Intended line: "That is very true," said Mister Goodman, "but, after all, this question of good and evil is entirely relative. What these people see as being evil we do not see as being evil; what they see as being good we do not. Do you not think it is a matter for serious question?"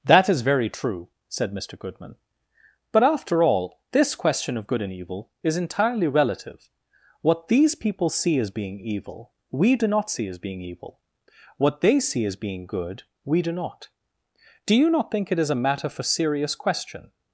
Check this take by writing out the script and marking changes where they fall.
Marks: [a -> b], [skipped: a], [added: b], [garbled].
"That is very true," said Mister Goodman, "but, after all, this question of good and evil is entirely relative. What these people see as being evil we do not see as being evil; what they see as being good we do not. Do you not think it is a matter for serious question?"